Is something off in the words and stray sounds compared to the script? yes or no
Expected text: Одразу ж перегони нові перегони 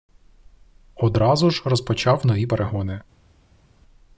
yes